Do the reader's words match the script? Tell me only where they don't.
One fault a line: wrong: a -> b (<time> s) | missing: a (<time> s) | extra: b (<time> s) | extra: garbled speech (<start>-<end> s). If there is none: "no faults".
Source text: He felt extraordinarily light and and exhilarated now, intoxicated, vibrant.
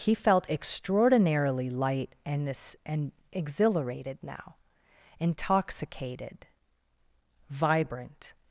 no faults